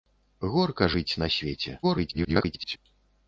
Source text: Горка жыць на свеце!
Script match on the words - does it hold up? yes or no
no